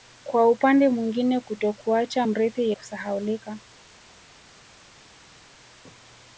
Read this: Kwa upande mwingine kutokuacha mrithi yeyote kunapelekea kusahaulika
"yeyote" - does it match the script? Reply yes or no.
no